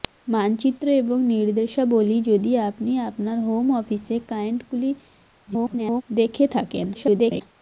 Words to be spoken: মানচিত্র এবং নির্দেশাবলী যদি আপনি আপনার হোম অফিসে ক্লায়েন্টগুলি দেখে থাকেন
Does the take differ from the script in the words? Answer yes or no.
yes